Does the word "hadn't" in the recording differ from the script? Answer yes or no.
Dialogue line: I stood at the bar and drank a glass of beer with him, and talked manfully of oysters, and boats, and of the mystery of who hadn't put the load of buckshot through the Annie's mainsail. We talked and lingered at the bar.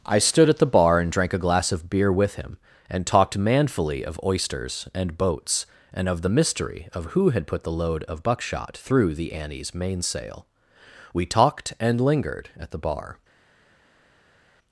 yes